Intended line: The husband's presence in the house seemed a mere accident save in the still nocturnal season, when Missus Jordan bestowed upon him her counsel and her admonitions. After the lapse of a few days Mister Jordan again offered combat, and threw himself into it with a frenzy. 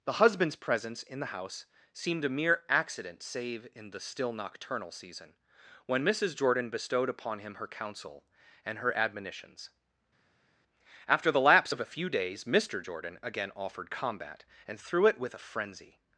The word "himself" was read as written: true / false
false